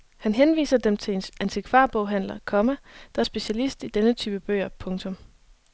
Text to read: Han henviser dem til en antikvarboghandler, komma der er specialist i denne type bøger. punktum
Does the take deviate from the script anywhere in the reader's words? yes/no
no